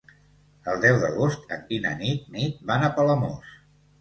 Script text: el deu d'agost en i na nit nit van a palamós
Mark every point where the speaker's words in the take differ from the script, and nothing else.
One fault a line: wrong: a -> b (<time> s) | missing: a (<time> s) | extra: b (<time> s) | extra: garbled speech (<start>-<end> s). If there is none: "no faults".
no faults